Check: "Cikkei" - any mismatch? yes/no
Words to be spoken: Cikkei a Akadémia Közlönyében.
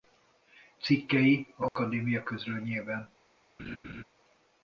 no